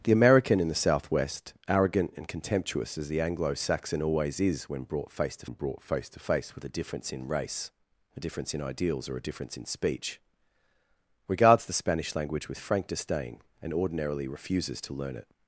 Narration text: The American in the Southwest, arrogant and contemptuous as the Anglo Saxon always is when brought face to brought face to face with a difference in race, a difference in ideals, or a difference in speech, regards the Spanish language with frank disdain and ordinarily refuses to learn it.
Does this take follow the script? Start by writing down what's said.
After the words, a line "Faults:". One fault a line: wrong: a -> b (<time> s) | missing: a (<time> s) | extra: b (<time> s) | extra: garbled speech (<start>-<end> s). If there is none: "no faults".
The American in the Southwest, arrogant and contemptuous as the Anglo Saxon always is when brought face to brought face to face with a difference in race, a difference in ideals, or a difference in speech, regards the Spanish language with frank disdain and ordinarily refuses to learn it.
Faults:
no faults